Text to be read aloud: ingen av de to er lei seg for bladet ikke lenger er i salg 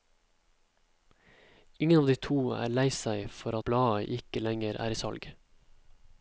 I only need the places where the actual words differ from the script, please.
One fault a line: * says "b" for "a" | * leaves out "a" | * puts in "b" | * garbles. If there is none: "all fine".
all fine